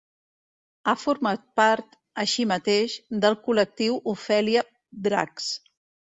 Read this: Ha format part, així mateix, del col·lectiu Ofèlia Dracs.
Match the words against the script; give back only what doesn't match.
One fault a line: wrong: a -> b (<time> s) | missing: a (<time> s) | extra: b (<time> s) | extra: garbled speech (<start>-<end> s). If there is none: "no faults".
no faults